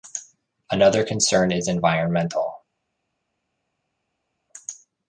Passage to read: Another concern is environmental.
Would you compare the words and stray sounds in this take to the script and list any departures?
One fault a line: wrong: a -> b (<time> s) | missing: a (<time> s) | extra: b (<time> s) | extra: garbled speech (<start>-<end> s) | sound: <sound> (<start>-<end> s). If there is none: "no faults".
no faults